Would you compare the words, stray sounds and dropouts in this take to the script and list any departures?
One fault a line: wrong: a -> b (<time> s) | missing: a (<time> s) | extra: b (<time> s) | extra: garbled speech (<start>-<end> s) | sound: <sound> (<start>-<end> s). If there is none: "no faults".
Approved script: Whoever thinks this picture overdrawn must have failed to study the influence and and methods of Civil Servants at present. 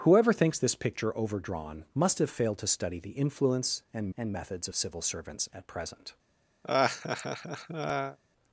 sound: laugh (6.6-8.2 s)